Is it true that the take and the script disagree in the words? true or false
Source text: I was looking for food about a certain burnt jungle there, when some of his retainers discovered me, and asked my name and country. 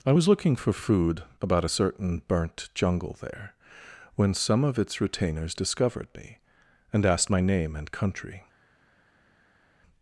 true